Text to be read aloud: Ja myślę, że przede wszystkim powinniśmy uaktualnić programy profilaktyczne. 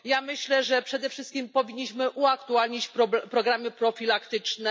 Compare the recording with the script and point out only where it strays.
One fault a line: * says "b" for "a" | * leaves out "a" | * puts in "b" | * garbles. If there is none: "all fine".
all fine